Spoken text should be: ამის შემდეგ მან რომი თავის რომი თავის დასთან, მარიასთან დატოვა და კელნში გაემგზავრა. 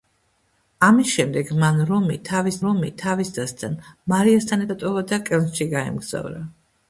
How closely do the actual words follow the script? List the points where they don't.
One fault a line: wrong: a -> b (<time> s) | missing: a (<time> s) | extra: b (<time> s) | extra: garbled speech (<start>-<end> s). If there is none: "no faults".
no faults